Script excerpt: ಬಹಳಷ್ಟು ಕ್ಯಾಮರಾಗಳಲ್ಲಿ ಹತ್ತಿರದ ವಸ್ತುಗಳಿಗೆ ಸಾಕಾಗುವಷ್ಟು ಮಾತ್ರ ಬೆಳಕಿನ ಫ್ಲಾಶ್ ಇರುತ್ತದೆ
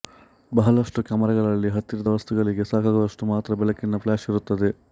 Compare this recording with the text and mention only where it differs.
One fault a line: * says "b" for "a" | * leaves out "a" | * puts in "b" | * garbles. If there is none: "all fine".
all fine